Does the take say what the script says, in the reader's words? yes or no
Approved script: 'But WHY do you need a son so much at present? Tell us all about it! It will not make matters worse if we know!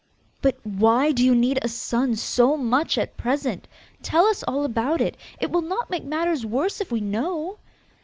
yes